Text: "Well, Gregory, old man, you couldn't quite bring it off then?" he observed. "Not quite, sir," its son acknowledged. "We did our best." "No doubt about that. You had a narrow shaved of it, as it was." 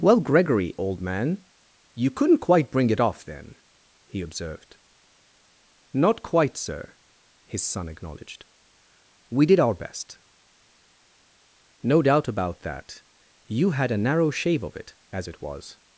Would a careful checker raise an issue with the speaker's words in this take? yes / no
yes